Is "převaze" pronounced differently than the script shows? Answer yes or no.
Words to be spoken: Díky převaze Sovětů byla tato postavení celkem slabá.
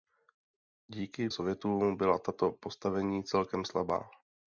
yes